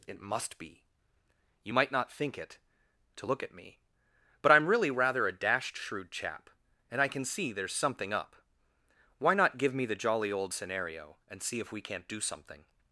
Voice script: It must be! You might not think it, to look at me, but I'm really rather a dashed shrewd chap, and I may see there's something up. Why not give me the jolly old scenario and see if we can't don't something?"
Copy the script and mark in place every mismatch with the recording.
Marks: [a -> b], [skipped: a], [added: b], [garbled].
It must be! You might not think it, to look at me, but I'm really rather a dashed shrewd chap, and I [may -> can] see there's something up. Why not give me the jolly old scenario and see if we can't [don't -> do] something?"